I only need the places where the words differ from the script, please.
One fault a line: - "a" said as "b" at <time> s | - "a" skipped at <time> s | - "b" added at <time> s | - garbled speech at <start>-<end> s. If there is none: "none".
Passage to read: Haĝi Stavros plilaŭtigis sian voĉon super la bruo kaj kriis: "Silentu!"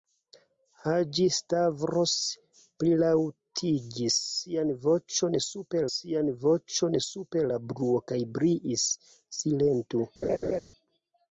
- "sian voĉon super" added at 6.0 s